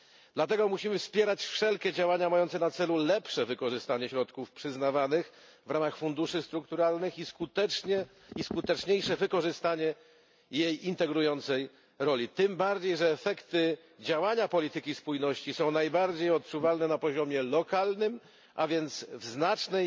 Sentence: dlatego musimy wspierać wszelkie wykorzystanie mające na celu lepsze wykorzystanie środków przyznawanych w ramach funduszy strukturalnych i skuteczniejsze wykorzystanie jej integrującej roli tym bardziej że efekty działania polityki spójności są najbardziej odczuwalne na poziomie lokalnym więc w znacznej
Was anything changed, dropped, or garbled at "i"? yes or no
no